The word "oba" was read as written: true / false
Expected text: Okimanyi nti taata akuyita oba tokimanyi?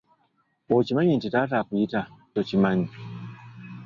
false